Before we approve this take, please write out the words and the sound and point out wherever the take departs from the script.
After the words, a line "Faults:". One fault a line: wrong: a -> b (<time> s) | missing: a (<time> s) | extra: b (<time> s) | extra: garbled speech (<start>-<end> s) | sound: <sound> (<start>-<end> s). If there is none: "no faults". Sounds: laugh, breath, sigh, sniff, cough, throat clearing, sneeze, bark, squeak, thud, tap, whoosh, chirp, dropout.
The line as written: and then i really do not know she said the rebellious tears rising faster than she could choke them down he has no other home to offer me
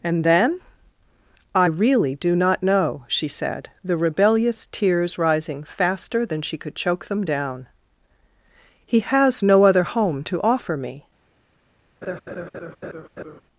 and then i really do not know she said the rebellious tears rising faster than she could choke them down he has no other home to offer me
Faults:
sound: laugh (12.0-13.4 s)